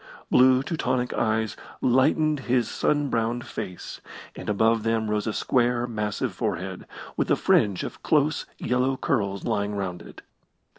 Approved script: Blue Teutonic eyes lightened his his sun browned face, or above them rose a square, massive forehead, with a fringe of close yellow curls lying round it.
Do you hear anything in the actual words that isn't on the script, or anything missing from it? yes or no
yes